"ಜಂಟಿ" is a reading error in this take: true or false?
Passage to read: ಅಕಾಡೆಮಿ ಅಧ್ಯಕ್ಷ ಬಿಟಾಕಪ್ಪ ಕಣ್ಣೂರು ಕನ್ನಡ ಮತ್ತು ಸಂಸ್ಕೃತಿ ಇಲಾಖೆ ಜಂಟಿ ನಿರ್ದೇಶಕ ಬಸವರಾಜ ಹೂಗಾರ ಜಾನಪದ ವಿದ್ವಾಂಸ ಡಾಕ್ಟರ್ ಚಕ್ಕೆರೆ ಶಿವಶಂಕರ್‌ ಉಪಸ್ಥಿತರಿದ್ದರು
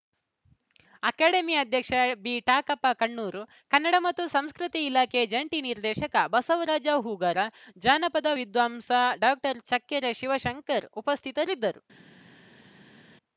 false